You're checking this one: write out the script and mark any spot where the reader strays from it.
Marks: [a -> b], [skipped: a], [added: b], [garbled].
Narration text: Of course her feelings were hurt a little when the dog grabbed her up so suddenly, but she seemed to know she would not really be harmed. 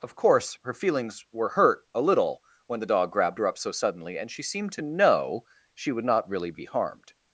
Of course her feelings were hurt a little when the dog grabbed her up so suddenly, [but -> and] she seemed to know she would not really be harmed.